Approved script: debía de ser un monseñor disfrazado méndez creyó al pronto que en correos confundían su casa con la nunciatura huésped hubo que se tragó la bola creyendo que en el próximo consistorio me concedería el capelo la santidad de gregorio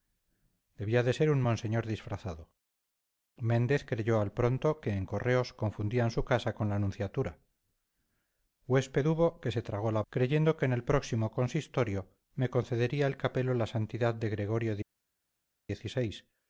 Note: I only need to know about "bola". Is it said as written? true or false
false